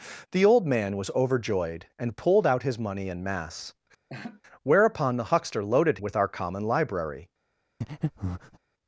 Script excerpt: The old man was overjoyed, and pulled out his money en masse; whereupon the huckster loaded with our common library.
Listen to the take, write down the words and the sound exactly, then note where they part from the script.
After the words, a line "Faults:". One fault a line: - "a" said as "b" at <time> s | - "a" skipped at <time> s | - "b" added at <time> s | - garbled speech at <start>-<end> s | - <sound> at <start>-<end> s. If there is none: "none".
The old man was overjoyed, and pulled out his money en masse; whereupon the huckster loaded with our common library.
Faults:
- laugh at 4.1-4.4 s
- breath at 7.8-8.6 s